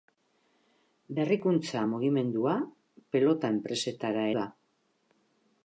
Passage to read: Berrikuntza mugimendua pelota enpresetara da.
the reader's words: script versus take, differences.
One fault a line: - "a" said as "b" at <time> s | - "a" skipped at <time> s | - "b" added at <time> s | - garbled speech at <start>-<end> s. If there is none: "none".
none